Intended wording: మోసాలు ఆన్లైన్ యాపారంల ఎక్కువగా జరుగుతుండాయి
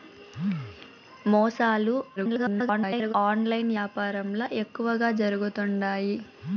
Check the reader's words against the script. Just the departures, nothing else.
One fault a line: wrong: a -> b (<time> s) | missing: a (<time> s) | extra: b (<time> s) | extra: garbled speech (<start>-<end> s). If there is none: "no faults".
extra: garbled speech (2.2-3.1 s)